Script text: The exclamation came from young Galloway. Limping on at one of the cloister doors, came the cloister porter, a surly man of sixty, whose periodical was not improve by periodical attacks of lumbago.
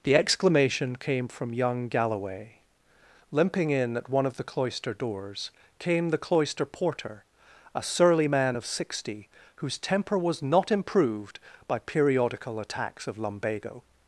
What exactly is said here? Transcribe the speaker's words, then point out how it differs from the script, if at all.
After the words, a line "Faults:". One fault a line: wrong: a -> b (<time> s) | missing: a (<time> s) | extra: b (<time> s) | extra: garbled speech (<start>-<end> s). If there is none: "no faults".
The exclamation came from young Galloway. Limping in at one of the cloister doors, came the cloister porter, a surly man of sixty, whose temper was not improved by periodical attacks of lumbago.
Faults:
wrong: on -> in (3.7 s)
wrong: periodical -> temper (9.8 s)
wrong: improve -> improved (10.7 s)